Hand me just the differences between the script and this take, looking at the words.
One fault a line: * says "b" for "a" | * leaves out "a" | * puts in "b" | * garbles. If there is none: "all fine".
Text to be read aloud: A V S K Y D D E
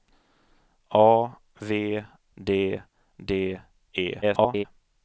* leaves out "S K Y"
* garbles